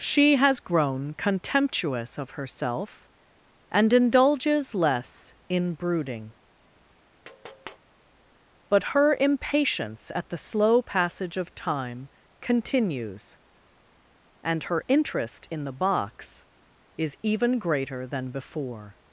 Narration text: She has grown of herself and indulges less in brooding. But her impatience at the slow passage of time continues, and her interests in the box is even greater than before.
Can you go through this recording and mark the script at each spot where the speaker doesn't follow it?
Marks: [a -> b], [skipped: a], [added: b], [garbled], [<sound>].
She has grown [added: contemptuous] of herself and indulges less in brooding. [tap] But her impatience at the slow passage of time continues, and her [interests -> interest] in the box is even greater than before.